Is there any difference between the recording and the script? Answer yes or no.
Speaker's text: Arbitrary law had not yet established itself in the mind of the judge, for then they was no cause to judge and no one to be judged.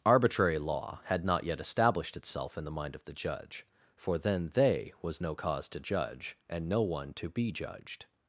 no